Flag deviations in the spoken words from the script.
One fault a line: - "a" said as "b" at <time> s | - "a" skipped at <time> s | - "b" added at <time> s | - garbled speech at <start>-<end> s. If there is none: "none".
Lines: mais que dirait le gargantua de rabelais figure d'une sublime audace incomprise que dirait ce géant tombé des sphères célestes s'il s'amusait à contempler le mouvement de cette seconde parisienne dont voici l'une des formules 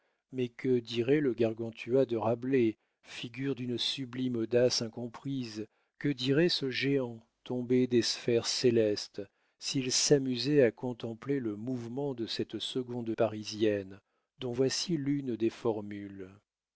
none